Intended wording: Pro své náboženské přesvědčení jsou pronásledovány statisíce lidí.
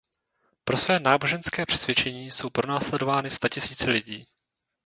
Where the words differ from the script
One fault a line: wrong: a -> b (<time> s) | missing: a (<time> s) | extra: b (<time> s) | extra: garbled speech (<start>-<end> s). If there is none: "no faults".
no faults